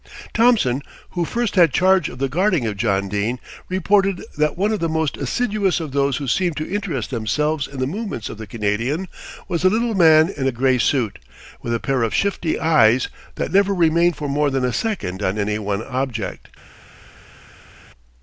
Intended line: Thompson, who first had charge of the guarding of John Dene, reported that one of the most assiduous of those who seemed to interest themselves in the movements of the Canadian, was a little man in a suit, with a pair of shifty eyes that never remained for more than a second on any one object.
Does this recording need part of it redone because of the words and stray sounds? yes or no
yes